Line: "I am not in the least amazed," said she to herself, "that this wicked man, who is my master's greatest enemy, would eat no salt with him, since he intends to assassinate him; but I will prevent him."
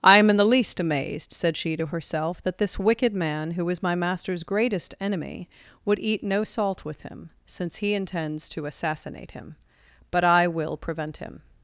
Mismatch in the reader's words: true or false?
true